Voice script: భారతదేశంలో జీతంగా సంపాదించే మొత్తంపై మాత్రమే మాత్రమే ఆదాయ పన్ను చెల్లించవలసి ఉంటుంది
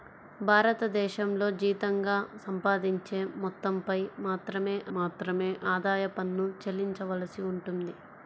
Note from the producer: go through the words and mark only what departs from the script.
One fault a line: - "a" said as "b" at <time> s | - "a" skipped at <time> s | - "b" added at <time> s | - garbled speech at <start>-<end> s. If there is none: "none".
none